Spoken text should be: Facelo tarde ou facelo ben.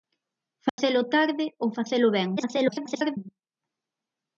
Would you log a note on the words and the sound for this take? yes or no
yes